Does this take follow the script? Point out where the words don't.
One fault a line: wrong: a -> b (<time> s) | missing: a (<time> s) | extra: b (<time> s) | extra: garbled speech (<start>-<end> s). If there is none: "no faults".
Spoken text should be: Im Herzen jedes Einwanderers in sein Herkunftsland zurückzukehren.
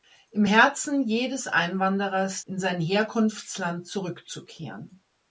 no faults